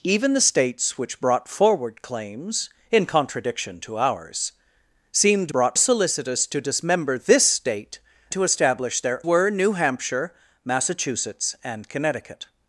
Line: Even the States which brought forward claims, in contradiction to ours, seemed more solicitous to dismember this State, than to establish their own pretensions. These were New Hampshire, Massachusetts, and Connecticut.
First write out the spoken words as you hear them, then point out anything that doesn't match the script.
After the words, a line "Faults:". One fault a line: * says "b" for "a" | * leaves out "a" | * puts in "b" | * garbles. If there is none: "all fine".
Even the States which brought forward claims, in contradiction to ours, seemed brought solicitous to dismember this State, to establish their were New Hampshire, Massachusetts, and Connecticut.
Faults:
* says "brought" for "more"
* leaves out "than"
* leaves out "own pretensions These"